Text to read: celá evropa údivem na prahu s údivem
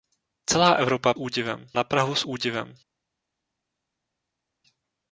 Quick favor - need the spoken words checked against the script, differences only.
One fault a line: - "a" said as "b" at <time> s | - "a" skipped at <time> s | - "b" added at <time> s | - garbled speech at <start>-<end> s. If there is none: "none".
none